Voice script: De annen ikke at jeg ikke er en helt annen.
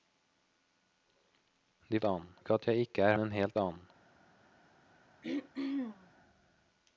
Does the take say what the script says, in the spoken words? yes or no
yes